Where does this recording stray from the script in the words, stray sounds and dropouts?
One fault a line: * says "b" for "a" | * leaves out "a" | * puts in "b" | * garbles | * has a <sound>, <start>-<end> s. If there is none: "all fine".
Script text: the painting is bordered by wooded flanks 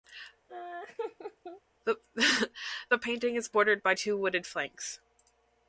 * has a laugh, 0.5-1.6 s
* puts in "two"